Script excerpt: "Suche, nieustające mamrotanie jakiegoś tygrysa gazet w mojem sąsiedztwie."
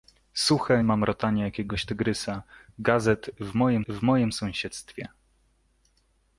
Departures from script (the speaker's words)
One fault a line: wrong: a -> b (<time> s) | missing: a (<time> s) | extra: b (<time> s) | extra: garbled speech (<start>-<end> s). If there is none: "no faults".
missing: nieustające (0.8 s)
extra: w mojem (3.9 s)